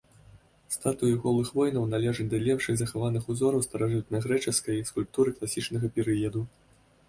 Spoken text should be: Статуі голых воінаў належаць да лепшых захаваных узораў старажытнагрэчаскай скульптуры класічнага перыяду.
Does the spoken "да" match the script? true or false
true